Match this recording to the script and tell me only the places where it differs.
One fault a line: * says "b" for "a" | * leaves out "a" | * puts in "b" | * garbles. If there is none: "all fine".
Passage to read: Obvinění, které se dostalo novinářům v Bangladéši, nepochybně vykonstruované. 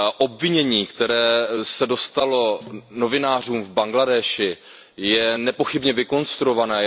* puts in "je"